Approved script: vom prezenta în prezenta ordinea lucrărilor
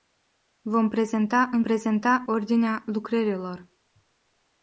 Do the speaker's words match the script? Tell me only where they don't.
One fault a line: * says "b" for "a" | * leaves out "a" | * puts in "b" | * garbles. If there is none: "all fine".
all fine